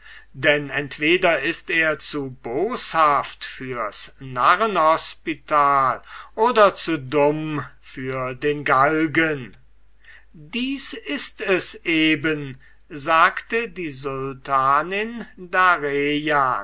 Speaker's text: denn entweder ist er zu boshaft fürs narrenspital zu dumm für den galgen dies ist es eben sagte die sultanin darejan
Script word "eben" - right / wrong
right